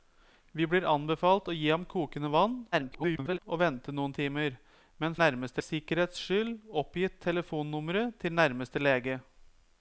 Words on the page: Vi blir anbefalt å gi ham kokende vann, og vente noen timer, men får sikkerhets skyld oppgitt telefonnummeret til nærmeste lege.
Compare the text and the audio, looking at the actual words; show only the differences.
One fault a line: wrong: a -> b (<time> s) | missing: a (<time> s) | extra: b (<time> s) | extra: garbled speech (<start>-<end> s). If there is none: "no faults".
extra: garbled speech (2.7-3.4 s)
wrong: får -> nærmeste (5.2 s)